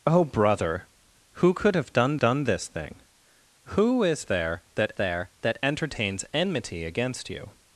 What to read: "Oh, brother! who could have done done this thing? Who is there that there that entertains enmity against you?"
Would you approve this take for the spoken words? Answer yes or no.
yes